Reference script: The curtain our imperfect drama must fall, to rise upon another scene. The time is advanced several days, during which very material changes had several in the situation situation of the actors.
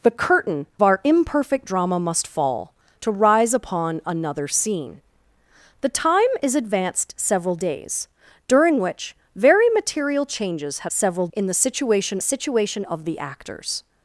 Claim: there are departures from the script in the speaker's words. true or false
false